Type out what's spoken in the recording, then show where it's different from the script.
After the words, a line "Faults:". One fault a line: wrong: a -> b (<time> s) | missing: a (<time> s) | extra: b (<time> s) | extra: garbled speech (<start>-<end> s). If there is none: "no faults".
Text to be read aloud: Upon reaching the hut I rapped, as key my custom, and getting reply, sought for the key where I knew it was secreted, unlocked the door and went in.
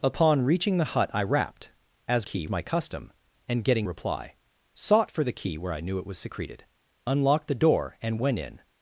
Upon reaching the hut I rapped, as key my custom, and getting reply, sought for the key where I knew it was secreted, unlocked the door and went in.
Faults:
no faults